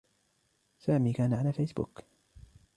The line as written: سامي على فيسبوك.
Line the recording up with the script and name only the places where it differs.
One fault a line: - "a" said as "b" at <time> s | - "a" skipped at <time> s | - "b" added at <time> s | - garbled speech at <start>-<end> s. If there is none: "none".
- "كان" added at 1.1 s